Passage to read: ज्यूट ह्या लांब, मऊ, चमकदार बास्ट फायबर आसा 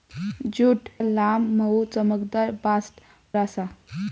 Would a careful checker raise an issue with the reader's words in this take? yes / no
yes